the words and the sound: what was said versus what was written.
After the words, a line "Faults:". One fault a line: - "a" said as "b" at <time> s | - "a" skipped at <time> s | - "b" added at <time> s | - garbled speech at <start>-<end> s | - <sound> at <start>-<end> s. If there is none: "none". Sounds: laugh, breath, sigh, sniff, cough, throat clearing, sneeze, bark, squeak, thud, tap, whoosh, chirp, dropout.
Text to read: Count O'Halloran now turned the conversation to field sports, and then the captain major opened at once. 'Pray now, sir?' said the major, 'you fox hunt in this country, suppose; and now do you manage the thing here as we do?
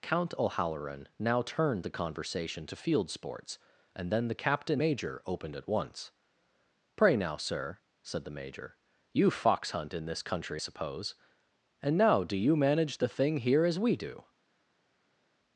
Count O'Halloran now turned the conversation to field sports, and then the captain major opened at once. 'Pray now, sir?' said the major, 'you fox hunt in this country, suppose; and now do you manage the thing here as we do?
Faults:
none